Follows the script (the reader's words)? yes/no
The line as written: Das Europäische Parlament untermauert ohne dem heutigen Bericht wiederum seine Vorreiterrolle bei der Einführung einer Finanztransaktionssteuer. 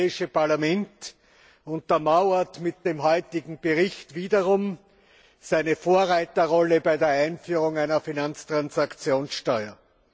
no